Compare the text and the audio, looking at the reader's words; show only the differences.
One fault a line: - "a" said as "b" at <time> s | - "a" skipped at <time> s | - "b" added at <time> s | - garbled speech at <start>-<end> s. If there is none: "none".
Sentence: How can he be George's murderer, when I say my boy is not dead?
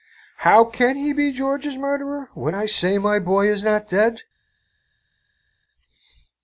none